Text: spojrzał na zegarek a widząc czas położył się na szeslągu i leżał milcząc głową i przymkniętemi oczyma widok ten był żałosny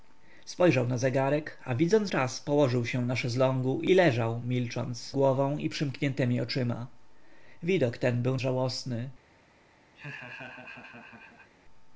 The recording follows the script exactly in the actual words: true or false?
true